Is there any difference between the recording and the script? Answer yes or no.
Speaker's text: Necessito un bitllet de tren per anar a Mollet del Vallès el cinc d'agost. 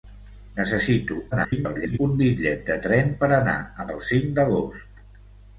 yes